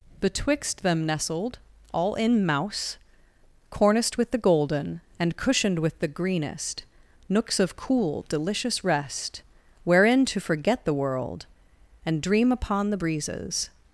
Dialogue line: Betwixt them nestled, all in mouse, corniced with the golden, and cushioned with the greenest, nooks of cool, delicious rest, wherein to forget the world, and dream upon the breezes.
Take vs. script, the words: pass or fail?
pass